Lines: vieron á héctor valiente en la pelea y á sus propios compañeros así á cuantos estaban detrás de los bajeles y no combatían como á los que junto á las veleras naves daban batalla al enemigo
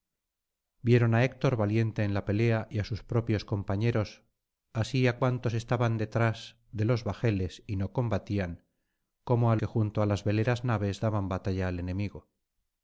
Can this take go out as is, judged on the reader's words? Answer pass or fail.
fail